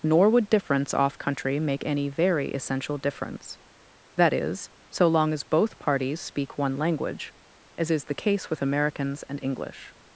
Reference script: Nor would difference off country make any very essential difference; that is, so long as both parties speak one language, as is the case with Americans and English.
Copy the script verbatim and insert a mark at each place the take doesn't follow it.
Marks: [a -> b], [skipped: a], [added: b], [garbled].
Nor would difference off country make any very essential difference; that is, so long as both parties speak one language, as is the case with Americans and English.